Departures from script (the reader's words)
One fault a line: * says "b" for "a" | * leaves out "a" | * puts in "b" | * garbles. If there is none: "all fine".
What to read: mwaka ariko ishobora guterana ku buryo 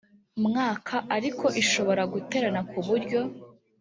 all fine